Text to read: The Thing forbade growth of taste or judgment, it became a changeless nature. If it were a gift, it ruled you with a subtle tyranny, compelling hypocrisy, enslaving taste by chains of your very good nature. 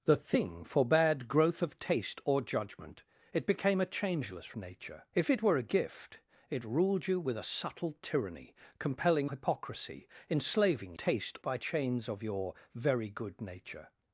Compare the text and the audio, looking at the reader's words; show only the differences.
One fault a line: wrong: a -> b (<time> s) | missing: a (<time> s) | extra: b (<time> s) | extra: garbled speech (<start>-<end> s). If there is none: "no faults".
no faults